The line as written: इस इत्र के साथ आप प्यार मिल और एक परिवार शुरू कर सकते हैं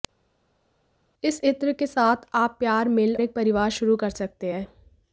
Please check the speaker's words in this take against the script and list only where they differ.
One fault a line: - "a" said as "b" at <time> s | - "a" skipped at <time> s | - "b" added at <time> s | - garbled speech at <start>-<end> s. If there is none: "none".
- "और" skipped at 3.1 s